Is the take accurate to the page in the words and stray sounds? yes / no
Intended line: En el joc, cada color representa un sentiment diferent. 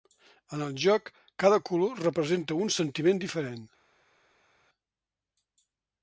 yes